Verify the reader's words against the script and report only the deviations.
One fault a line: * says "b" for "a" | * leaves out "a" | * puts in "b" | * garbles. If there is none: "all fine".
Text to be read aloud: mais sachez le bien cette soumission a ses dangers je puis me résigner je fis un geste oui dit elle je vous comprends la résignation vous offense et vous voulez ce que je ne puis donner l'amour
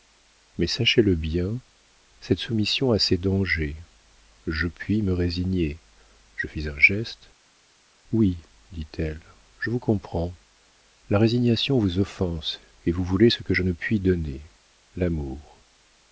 all fine